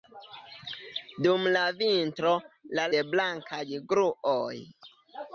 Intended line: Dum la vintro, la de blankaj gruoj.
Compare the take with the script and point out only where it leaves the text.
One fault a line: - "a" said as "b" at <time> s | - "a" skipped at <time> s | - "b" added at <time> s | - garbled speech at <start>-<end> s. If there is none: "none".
none